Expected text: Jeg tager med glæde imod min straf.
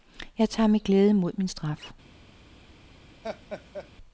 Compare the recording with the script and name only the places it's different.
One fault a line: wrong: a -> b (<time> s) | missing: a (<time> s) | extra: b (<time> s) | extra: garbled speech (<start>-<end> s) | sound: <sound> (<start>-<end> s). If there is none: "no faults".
sound: laugh (3.2-3.9 s)